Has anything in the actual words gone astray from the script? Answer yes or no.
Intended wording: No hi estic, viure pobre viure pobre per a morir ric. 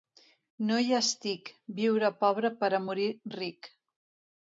yes